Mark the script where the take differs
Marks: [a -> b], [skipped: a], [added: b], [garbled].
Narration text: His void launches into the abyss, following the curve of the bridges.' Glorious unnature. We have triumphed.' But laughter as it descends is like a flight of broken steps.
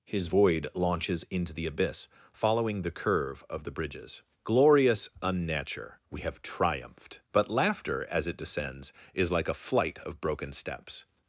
His void launches into the abyss, following the curve of the bridges.' Glorious unnature. We have triumphed.' But laughter as it descends is like a flight of broken steps.